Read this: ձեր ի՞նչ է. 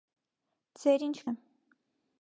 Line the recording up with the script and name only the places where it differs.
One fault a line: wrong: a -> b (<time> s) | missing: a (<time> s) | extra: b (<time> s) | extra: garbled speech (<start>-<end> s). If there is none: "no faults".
no faults